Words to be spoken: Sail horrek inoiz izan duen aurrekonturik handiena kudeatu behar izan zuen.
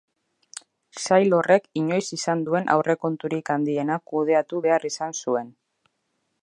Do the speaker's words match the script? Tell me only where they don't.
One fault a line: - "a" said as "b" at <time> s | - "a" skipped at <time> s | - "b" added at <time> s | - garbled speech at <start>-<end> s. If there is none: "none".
none